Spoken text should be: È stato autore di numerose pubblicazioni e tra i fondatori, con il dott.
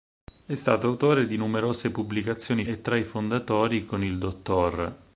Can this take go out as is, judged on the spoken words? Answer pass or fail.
pass